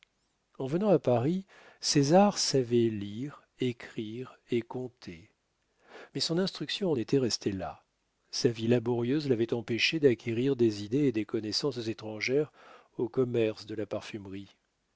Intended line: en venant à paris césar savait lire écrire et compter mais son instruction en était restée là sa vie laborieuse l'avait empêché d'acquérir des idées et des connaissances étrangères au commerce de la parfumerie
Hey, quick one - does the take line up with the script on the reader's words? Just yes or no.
yes